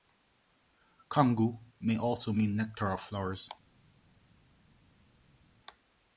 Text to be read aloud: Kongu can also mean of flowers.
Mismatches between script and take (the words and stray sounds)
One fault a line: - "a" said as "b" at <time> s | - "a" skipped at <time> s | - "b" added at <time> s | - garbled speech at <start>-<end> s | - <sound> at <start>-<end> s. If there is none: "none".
- "can" said as "may" at 1.8 s
- "nectar" added at 2.5 s